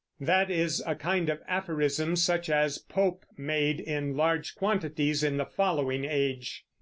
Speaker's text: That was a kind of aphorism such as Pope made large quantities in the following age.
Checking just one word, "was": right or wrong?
wrong